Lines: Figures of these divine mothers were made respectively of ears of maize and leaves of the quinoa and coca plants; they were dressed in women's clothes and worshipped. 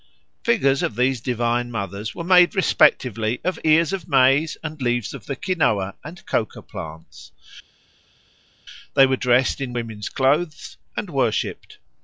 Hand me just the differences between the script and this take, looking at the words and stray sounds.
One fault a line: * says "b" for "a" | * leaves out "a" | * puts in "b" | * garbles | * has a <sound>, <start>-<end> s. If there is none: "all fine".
all fine